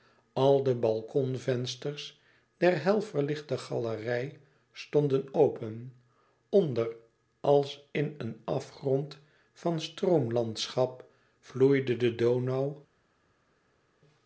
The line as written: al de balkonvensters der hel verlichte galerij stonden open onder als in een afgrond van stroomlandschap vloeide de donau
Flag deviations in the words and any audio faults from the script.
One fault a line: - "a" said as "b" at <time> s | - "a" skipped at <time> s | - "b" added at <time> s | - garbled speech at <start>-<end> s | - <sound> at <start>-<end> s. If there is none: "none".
none